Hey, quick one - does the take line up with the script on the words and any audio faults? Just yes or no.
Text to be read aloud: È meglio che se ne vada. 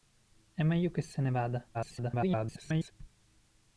no